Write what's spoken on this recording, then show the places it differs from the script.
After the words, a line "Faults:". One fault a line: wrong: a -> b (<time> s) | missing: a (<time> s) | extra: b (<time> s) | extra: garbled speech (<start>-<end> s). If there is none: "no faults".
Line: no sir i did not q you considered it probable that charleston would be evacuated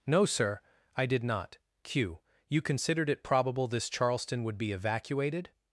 no sir i did not q you considered it probable this charleston would be evacuated
Faults:
wrong: that -> this (3.7 s)